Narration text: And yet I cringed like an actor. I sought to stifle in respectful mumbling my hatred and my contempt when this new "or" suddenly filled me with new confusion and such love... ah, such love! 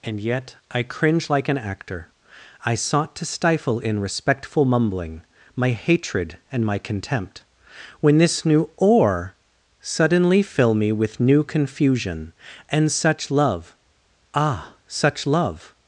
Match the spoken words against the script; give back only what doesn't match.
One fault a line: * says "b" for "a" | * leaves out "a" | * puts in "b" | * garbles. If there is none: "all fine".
* says "cringe" for "cringed"
* says "fill" for "filled"